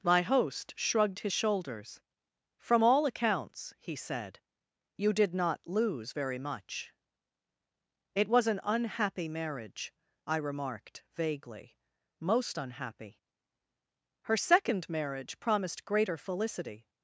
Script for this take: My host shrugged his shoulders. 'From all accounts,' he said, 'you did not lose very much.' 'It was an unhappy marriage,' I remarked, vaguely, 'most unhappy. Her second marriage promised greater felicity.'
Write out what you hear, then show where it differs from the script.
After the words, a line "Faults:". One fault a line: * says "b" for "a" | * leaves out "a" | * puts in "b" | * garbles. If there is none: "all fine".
My host shrugged his shoulders. 'From all accounts,' he said, 'you did not lose very much.' 'It was an unhappy marriage,' I remarked, vaguely, 'most unhappy. Her second marriage promised greater felicity.'
Faults:
all fine